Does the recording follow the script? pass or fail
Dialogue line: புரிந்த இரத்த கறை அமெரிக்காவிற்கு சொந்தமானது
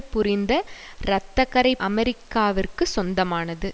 pass